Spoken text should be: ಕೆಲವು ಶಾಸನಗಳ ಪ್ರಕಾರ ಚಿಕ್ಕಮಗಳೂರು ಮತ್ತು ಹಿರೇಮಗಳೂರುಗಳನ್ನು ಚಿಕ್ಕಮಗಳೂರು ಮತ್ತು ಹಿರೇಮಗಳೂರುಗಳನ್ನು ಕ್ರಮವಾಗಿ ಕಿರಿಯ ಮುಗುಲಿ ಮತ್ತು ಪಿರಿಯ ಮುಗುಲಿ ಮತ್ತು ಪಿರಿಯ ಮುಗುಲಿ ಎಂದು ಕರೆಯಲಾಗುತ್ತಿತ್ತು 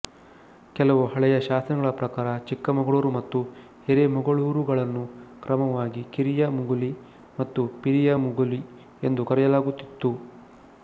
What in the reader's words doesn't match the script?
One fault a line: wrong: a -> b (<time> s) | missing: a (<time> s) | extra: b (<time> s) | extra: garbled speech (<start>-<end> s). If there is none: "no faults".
extra: ಹಳೆಯ (1.1 s)
missing: ಚಿಕ್ಕಮಗಳೂರು ಮತ್ತು ಹಿರೇಮಗಳೂರುಗಳನ್ನು (5.0 s)
missing: ಮತ್ತು ಪಿರಿಯ ಮುಗುಲಿ (8.6 s)